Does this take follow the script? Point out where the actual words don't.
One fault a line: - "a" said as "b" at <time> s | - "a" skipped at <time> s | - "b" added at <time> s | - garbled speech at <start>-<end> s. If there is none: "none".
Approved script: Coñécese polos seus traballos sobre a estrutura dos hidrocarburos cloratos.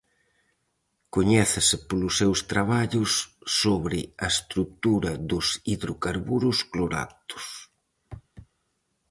none